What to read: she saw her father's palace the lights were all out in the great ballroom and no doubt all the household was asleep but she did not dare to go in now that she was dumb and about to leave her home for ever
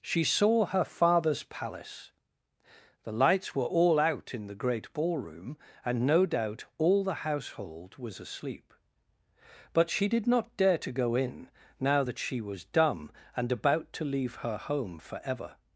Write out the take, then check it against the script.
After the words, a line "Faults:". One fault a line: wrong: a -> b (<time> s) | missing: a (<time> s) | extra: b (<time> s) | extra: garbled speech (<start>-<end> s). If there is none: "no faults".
she saw her father's palace the lights were all out in the great ballroom and no doubt all the household was asleep but she did not dare to go in now that she was dumb and about to leave her home for ever
Faults:
no faults